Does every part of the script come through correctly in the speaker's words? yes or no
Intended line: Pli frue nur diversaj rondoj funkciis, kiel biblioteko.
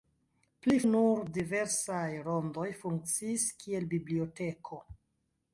no